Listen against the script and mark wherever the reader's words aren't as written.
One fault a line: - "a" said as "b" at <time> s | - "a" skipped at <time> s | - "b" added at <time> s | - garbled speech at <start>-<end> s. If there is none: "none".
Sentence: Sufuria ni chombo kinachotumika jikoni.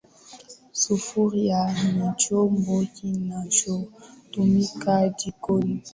none